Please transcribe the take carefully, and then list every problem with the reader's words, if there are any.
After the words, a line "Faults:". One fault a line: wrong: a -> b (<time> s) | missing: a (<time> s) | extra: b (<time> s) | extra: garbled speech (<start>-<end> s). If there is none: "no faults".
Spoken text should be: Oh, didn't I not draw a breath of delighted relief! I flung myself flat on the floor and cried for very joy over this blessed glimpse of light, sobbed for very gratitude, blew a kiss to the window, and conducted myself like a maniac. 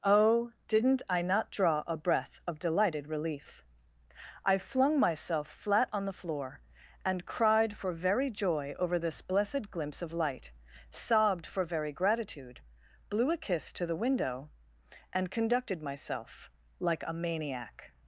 Oh, didn't I not draw a breath of delighted relief! I flung myself flat on the floor and cried for very joy over this blessed glimpse of light, sobbed for very gratitude, blew a kiss to the window, and conducted myself like a maniac.
Faults:
no faults